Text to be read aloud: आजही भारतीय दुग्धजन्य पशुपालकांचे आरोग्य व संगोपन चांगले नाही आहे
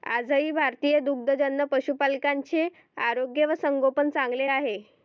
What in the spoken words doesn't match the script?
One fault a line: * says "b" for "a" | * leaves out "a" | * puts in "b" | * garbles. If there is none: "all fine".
* leaves out "नाही"